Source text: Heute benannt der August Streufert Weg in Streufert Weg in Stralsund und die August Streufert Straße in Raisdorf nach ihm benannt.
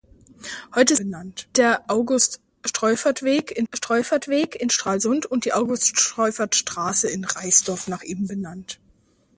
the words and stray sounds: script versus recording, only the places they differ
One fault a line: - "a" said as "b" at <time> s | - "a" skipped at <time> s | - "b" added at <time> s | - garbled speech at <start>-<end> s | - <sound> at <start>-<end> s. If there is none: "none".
none